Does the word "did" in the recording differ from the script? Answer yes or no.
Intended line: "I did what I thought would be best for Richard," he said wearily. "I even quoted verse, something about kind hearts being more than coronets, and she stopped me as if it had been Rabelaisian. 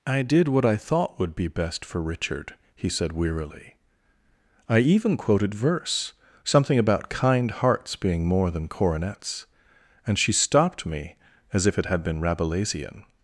no